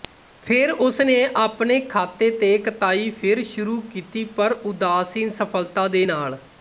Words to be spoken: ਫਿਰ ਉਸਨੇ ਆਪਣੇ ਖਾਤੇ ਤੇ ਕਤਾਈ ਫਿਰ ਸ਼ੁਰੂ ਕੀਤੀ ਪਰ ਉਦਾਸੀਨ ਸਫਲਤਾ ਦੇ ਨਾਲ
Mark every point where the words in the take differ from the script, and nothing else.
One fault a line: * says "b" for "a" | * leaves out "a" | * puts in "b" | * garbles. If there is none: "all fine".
all fine